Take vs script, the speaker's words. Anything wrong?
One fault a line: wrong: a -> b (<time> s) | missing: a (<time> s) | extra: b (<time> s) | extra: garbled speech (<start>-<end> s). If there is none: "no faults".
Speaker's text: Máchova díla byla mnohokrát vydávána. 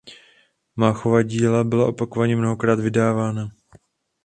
extra: opakovaně (1.9 s)